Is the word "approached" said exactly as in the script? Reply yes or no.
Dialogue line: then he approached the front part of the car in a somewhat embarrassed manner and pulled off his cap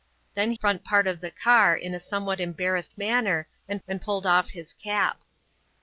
no